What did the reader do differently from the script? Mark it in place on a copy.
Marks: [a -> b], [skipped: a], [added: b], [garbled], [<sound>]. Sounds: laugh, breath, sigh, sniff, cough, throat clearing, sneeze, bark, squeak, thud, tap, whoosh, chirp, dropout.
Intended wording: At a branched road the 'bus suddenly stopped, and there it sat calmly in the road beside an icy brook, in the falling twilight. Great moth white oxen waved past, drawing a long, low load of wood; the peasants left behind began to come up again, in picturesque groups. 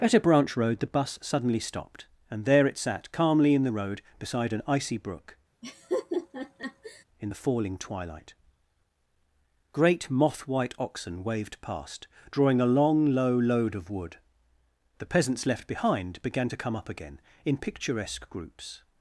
At a [branched -> branch] road the 'bus suddenly stopped, and there it sat calmly in the road beside an icy brook, [laugh] in the falling twilight. Great moth white oxen waved past, drawing a long, low load of wood; the peasants left behind began to come up again, in picturesque groups.